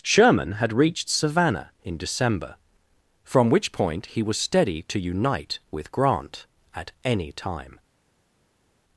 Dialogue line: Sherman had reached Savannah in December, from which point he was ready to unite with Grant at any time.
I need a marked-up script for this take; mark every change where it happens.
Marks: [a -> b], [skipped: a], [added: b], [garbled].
Sherman had reached Savannah in December, from which point he was [ready -> steady] to unite with Grant at any time.